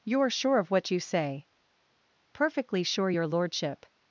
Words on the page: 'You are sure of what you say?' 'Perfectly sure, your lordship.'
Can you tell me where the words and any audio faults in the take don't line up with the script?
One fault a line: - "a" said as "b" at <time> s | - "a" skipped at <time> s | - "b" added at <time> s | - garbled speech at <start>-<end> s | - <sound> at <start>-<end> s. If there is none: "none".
none